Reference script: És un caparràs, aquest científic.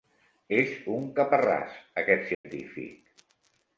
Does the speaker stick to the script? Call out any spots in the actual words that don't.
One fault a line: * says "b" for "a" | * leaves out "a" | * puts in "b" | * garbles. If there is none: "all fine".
all fine